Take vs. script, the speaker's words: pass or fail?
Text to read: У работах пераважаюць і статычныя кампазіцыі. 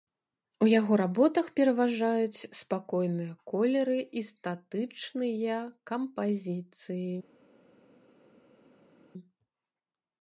fail